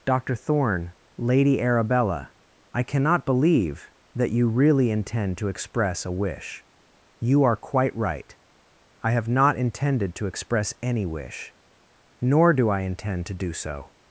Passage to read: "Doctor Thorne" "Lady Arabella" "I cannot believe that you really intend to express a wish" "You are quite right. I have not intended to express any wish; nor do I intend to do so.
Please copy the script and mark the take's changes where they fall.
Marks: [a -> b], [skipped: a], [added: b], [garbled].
"Doctor Thorne" "Lady Arabella" "I cannot believe that you really intend to express a wish" "You are quite right. I have not intended to express any wish; nor do I intend to do so.